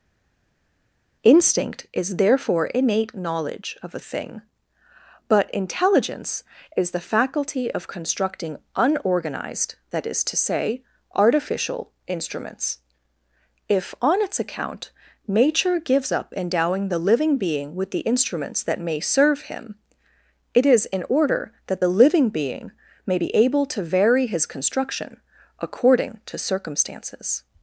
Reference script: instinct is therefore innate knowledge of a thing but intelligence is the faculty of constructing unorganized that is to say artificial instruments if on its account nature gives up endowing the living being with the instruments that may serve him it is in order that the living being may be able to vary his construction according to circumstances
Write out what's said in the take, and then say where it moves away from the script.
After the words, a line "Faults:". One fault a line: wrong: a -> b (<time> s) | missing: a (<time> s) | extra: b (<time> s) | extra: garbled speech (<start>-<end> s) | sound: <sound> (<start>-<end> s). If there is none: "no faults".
instinct is therefore innate knowledge of a thing but intelligence is the faculty of constructing unorganized that is to say artificial instruments if on its account nature gives up endowing the living being with the instruments that may serve him it is in order that the living being may be able to vary his construction according to circumstances
Faults:
no faults